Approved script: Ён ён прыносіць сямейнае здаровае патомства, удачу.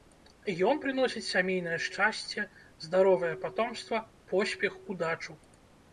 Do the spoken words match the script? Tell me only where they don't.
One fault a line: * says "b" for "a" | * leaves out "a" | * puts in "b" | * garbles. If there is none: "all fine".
* leaves out "ён"
* puts in "шчасце"
* puts in "поспех"